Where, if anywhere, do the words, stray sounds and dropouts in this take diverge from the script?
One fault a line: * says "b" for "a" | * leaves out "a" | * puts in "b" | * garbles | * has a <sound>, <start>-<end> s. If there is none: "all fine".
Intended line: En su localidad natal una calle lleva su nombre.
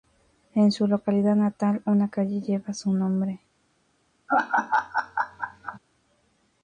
* has a laugh, 4.3-5.8 s